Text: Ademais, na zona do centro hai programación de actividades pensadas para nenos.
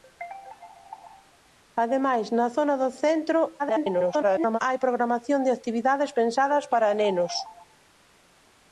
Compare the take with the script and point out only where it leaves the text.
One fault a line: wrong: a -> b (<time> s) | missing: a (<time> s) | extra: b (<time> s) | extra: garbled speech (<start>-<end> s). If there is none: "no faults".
extra: garbled speech (3.6-4.6 s)